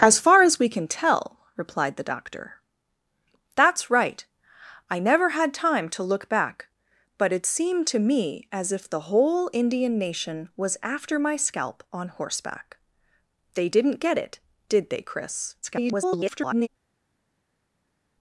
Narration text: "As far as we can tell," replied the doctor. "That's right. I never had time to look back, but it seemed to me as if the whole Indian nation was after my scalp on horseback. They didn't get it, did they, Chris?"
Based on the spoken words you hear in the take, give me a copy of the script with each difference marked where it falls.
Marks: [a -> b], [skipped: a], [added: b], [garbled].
"As far as we can tell," replied the doctor. "That's right. I never had time to look back, but it seemed to me as if the whole Indian nation was after my scalp on horseback. They didn't get it, did they, Chris?" [garbled]